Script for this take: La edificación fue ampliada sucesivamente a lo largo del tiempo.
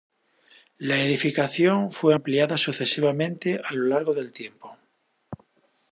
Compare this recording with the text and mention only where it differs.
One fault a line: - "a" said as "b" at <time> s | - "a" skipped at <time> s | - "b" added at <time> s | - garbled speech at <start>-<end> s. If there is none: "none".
none